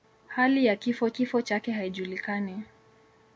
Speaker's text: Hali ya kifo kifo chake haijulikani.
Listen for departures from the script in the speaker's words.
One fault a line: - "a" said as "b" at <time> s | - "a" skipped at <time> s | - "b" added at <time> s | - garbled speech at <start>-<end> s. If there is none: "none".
none